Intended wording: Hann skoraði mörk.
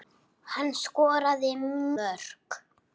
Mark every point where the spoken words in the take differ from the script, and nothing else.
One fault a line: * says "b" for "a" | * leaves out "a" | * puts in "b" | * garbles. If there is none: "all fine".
all fine